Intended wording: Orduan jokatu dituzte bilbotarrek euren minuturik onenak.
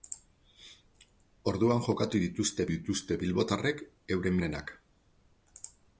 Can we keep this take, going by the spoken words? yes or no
no